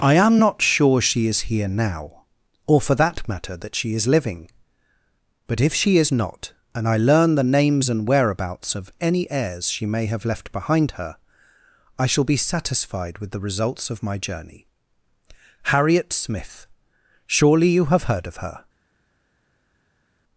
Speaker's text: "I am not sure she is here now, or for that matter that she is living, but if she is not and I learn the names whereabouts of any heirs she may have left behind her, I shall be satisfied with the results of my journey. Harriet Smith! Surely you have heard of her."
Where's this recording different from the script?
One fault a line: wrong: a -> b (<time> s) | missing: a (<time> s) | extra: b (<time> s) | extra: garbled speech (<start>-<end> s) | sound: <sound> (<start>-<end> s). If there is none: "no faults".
extra: and (7.9 s)